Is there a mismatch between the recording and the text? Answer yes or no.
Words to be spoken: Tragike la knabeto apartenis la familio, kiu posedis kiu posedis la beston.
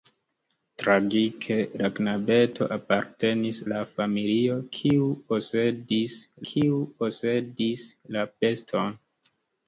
no